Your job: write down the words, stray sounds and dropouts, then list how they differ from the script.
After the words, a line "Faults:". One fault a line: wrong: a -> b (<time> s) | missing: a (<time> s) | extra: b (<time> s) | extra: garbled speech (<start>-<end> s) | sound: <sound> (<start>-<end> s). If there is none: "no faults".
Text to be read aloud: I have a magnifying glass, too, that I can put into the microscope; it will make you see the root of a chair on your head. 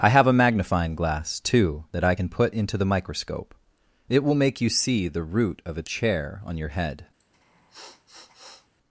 I have a magnifying glass, too, that I can put into the microscope; it will make you see the root of a chair on your head.
Faults:
sound: sniff (7.2-8.7 s)